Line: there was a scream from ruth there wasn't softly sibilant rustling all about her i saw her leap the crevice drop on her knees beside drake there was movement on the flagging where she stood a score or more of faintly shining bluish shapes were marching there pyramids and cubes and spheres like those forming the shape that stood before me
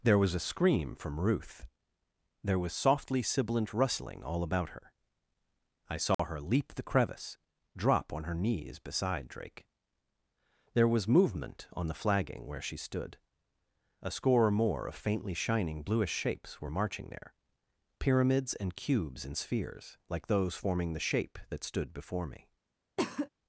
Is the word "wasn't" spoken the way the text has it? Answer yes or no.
no